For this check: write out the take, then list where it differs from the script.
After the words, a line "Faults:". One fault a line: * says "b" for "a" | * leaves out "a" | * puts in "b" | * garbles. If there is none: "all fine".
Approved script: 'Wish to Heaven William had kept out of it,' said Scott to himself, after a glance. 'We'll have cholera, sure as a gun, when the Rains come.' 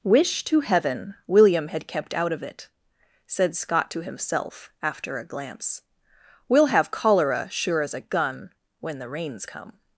'Wish to Heaven William had kept out of it,' said Scott to himself, after a glance. 'We'll have cholera, sure as a gun, when the Rains come.'
Faults:
all fine